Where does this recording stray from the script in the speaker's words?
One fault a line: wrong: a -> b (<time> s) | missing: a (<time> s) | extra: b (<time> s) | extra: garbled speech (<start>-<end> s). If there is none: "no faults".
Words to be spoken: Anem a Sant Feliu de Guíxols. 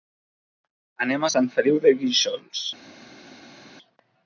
no faults